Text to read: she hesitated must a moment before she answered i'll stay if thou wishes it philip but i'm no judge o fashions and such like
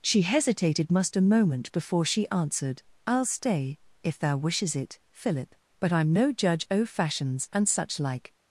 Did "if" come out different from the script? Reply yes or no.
no